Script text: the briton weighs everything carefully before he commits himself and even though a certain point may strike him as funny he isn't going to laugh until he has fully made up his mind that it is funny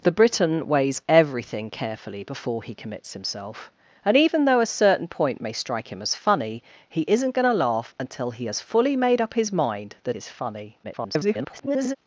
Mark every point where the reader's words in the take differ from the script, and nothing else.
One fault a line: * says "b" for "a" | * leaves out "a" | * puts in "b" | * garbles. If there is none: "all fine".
* leaves out "it"
* garbles